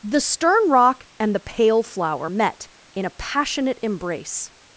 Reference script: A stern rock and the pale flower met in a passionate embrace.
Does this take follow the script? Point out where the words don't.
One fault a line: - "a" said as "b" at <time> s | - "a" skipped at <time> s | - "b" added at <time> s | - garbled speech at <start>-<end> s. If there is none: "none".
- "A" said as "The" at 0.0 s